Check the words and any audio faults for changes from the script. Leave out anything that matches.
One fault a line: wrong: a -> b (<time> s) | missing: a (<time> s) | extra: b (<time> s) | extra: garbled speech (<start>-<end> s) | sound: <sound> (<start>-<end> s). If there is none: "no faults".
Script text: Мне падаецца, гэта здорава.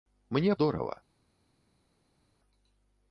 missing: падаецца гэта (0.6 s)